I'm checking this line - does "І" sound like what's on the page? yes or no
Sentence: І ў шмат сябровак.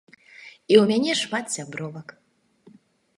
yes